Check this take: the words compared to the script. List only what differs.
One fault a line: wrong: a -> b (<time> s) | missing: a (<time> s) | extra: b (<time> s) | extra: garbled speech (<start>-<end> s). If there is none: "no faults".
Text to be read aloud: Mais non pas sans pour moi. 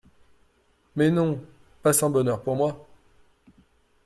extra: bonheur (2.1 s)